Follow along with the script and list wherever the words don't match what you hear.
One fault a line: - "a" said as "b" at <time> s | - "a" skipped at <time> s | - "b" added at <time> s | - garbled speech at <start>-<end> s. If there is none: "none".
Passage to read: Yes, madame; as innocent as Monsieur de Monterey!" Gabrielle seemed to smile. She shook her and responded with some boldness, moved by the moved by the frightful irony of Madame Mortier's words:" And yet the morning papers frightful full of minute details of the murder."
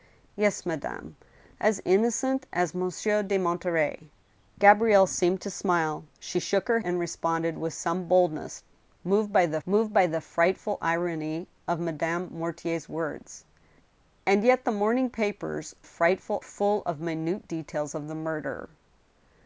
none